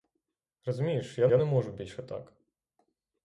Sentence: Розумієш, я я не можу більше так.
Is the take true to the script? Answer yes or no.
yes